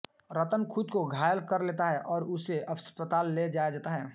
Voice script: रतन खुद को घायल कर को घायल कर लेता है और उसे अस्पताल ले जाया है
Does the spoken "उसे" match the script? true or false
true